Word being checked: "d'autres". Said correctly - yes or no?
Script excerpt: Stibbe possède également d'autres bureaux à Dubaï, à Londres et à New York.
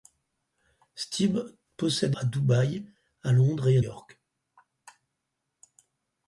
no